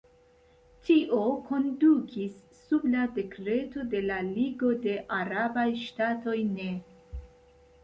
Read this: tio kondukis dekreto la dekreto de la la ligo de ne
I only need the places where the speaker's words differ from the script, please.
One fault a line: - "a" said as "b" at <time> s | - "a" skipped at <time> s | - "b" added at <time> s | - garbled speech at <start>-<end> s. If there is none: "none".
- "dekreto" said as "sub" at 2.6 s
- "la" skipped at 4.2 s
- "arabaj ŝtatoj" added at 5.2 s